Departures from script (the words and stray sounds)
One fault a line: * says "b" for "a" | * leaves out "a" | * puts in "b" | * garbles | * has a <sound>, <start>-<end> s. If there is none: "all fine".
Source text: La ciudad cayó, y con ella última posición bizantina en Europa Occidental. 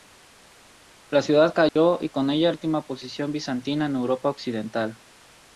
* has a dropout, 1.7-1.8 s